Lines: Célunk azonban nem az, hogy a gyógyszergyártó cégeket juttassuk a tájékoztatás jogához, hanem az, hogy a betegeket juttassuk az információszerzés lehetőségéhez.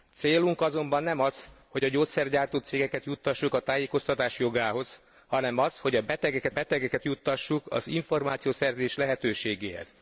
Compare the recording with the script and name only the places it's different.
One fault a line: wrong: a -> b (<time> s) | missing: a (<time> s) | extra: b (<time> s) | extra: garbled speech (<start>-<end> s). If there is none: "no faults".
extra: betegeket (6.5 s)